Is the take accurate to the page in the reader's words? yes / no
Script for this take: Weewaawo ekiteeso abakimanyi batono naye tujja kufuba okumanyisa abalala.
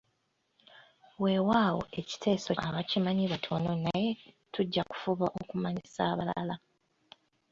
yes